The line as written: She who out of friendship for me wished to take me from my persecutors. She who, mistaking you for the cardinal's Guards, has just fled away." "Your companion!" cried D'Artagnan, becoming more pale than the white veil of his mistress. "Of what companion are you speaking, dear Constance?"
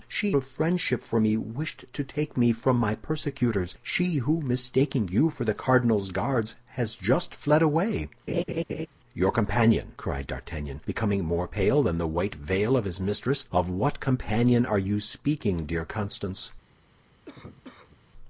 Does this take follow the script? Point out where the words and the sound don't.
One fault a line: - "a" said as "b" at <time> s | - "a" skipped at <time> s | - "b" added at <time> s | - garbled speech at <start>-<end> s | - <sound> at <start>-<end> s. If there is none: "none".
- "who out" skipped at 0.3 s
- laugh at 8.3-8.9 s
- cough at 17.3-18.1 s